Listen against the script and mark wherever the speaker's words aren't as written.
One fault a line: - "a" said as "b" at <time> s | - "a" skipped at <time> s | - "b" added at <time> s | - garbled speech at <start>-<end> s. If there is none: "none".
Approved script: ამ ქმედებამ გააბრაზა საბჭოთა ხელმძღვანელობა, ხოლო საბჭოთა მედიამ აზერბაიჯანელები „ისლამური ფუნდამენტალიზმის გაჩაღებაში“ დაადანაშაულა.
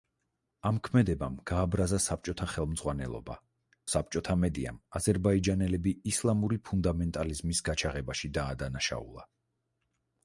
- "ხოლო" skipped at 3.4 s